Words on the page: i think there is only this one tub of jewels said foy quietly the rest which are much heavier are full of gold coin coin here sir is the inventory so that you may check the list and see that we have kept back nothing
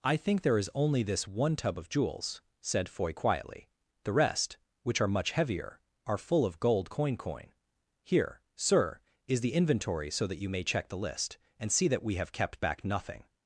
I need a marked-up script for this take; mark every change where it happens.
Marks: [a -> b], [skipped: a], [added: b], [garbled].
i think there is only this one tub of jewels said foy quietly the rest which are much heavier are full of gold coin coin here sir is the inventory so that you may check the list and see that we have kept back nothing